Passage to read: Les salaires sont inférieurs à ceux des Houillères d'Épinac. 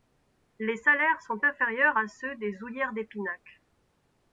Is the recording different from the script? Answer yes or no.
no